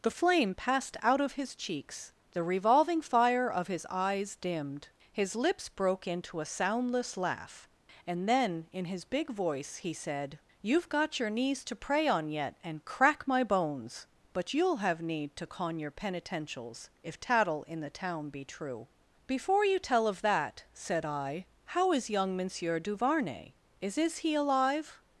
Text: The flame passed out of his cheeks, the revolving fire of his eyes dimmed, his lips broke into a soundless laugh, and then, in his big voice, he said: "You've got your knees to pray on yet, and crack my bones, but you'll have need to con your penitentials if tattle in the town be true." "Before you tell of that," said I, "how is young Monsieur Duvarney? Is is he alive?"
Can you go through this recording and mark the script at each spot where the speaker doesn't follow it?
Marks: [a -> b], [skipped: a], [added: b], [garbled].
The flame passed out of his cheeks, the revolving fire of his eyes dimmed, his lips broke into a soundless laugh, and then, in his big voice, he said: "You've got your knees to pray on yet, and crack my bones, but you'll have need to con your penitentials if tattle in the town be true." "Before you tell of that," said I, "how is young Monsieur Duvarney? Is is he alive?"